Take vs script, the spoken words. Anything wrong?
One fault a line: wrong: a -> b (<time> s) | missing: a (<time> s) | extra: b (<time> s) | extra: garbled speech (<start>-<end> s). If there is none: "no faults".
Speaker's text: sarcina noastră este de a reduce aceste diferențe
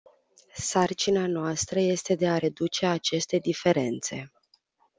no faults